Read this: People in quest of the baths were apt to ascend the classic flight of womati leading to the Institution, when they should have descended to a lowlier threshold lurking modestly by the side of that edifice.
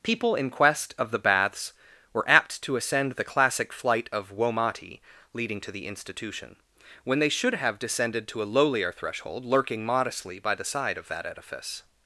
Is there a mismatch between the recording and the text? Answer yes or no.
no